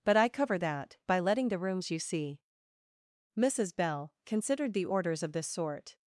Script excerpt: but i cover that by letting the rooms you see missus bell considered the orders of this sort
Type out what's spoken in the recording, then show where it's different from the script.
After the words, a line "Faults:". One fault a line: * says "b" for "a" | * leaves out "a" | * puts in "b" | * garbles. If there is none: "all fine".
but i cover that by letting the rooms you see missus bell considered the orders of this sort
Faults:
all fine